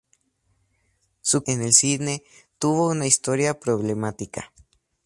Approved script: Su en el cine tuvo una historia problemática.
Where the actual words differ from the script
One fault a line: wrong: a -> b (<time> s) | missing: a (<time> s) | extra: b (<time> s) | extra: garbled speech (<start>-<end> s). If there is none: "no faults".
no faults